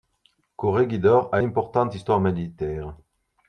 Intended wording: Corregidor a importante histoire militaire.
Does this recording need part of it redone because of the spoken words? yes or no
no